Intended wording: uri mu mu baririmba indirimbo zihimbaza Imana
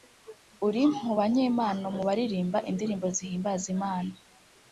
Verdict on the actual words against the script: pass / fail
fail